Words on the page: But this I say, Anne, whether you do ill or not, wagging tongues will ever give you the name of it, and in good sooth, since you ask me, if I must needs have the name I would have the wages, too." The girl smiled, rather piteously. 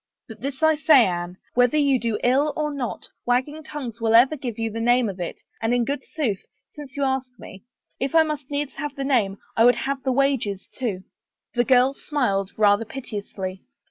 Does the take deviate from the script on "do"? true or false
false